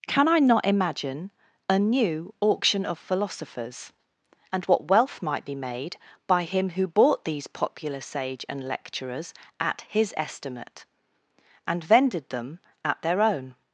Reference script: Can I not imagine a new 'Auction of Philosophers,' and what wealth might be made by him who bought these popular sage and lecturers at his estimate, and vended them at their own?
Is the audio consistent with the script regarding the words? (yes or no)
yes